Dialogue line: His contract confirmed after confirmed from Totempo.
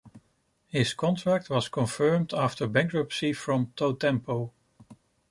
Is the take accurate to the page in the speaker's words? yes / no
no